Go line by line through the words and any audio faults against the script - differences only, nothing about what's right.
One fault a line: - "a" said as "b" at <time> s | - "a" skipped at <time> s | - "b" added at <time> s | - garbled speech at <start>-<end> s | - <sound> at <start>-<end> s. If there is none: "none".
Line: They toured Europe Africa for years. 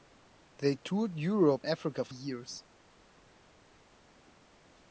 none